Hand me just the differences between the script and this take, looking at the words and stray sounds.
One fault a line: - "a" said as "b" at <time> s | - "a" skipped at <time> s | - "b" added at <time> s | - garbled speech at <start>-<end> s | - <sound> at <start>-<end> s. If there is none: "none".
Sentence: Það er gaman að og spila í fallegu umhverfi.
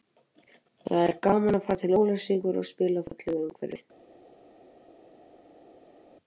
- "fara til Ólafsvíkur" added at 1.7 s